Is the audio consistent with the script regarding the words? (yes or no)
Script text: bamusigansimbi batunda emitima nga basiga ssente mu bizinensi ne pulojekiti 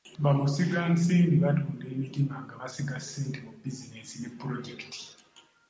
yes